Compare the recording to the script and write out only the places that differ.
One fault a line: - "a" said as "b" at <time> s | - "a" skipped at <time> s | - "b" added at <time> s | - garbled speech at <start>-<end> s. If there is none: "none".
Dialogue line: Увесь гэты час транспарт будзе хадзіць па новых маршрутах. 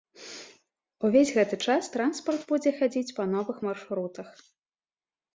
none